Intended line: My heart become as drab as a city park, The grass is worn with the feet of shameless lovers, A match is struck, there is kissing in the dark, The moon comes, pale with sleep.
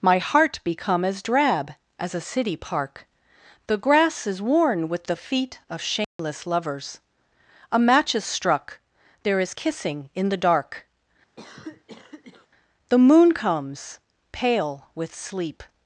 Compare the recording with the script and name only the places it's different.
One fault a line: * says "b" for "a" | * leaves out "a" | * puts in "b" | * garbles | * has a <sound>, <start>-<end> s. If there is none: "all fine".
* has a dropout, 6.0-6.2 s
* has a cough, 11.4-12.5 s